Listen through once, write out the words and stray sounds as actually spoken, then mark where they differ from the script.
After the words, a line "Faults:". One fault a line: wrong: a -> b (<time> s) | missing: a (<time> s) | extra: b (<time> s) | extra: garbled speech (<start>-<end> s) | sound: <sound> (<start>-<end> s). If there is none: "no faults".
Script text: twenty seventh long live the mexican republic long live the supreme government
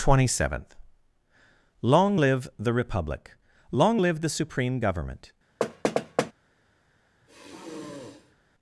twenty seventh long live the republic long live the supreme government
Faults:
missing: mexican (2.7 s)
sound: thud (5.6-6.3 s)
sound: sigh (7.2-8.4 s)